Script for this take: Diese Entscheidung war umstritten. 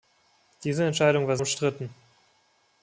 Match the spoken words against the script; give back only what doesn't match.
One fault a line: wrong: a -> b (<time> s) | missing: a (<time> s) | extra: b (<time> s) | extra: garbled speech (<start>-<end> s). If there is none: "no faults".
no faults